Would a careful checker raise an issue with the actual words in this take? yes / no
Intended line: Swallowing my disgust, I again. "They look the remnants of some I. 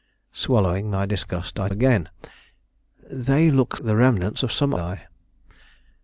no